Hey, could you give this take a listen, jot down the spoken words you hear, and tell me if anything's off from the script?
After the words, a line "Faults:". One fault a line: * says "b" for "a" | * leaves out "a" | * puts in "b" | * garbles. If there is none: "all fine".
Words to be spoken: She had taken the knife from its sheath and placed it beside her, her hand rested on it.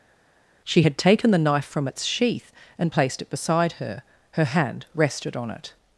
She had taken the knife from its sheath and placed it beside her, her hand rested on it.
Faults:
all fine